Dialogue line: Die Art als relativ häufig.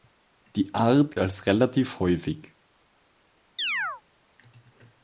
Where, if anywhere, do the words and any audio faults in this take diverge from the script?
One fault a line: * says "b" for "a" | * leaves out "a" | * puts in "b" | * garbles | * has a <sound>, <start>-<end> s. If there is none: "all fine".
* has a chirp, 3.6-4.0 s